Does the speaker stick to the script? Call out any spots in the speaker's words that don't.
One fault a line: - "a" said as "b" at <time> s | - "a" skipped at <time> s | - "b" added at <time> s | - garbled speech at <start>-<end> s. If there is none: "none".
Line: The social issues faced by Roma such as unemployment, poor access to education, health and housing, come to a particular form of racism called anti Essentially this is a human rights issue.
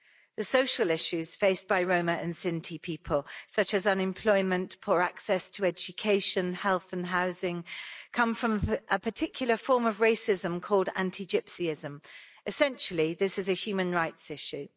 - "and Sinti people" added at 2.1 s
- "to" said as "from" at 8.3 s
- "Gypsyism" added at 11.2 s